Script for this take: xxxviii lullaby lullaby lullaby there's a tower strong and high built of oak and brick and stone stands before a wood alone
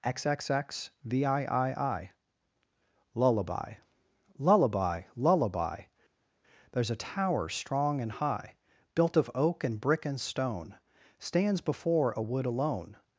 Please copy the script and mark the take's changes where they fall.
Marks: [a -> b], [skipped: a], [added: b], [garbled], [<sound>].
xxxviii lullaby lullaby lullaby there's a tower strong and high built of oak and brick and stone stands before a wood alone